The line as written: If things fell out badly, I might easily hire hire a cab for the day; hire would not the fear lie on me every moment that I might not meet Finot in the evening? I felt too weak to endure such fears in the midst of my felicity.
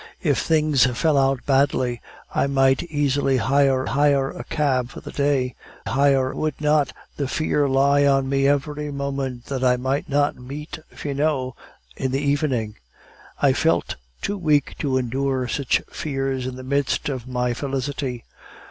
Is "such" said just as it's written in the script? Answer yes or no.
yes